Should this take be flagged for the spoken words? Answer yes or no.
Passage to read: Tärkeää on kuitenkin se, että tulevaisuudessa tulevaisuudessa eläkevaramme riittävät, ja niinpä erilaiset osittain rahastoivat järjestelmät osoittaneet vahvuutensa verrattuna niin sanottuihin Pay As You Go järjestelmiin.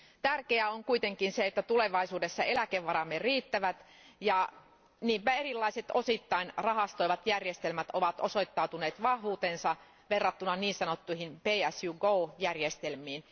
yes